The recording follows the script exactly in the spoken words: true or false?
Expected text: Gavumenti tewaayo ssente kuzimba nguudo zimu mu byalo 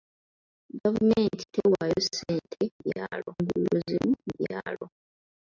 false